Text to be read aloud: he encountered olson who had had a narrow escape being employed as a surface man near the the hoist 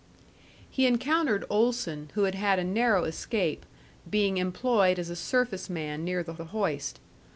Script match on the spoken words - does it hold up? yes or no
yes